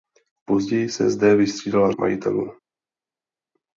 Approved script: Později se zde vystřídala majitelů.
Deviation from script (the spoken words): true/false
false